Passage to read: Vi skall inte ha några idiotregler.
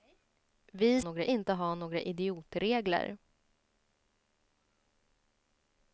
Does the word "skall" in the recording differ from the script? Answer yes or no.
yes